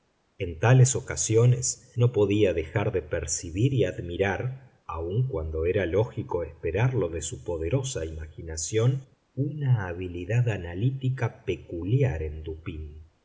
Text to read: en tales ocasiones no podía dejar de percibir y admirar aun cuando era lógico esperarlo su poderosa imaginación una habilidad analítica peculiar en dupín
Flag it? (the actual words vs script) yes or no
yes